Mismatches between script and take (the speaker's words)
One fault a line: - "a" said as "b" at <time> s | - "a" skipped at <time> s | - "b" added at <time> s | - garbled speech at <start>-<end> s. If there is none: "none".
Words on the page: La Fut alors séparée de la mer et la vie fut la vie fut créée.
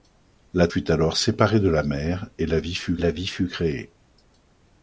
none